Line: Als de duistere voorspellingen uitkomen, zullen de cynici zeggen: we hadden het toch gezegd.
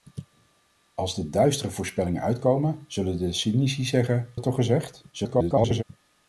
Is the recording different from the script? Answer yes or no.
yes